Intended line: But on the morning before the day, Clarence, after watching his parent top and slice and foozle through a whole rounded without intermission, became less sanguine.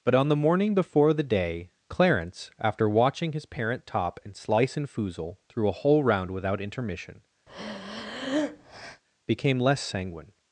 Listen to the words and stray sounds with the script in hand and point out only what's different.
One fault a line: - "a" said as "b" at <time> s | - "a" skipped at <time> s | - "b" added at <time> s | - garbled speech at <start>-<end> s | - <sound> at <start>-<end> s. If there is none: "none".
- "rounded" said as "round" at 6.0 s
- breath at 7.5-9.0 s